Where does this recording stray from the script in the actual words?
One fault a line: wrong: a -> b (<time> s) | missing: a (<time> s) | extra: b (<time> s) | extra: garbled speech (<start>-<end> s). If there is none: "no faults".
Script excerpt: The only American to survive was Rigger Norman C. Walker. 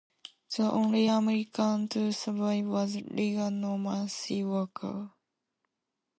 no faults